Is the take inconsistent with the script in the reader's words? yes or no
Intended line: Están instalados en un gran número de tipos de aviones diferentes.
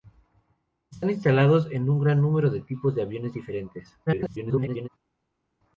yes